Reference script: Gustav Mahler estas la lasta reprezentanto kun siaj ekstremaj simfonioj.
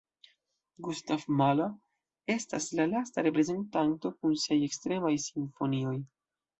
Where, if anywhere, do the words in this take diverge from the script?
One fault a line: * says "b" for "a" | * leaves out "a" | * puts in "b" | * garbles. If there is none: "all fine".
all fine